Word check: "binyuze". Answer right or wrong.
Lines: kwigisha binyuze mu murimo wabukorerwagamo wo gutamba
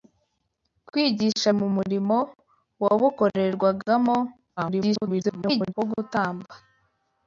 wrong